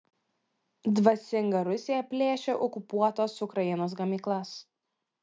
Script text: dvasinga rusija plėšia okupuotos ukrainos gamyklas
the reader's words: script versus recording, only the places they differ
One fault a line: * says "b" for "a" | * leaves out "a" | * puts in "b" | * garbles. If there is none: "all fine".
all fine